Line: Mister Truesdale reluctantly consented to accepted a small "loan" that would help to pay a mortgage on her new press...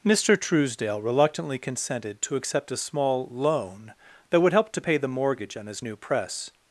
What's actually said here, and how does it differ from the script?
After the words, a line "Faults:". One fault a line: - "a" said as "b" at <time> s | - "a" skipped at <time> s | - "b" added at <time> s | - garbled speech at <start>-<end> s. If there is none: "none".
Mister Truesdale reluctantly consented to accept a small "loan" that would help to pay the mortgage on his new press...
Faults:
- "accepted" said as "accept" at 2.4 s
- "a" said as "the" at 5.0 s
- "her" said as "his" at 5.7 s